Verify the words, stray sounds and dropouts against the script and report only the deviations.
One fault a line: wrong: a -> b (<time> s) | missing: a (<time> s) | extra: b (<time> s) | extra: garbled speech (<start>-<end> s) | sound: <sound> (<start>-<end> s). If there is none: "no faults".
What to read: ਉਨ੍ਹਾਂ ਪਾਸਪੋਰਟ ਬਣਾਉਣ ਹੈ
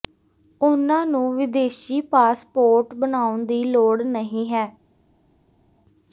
extra: ਨੂੰ ਵਿਦੇਸ਼ੀ (1.1 s)
extra: ਦੀ ਲੋੜ ਨਹੀਂ (3.5 s)